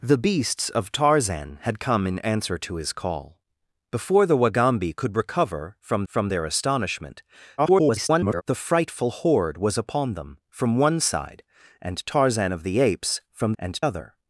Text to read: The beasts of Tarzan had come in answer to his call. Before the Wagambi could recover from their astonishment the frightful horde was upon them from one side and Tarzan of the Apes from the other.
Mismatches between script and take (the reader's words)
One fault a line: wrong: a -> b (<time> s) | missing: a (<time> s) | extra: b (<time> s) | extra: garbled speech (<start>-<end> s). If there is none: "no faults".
extra: from (6.0 s)
extra: garbled speech (7.6-8.4 s)
wrong: the -> and (13.6 s)